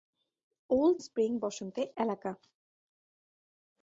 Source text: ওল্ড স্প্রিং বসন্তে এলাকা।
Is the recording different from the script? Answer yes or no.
no